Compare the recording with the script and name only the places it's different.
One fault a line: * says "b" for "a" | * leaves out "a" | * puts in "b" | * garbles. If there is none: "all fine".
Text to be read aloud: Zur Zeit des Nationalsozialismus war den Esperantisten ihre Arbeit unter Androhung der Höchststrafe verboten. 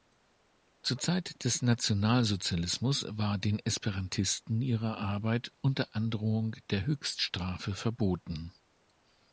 all fine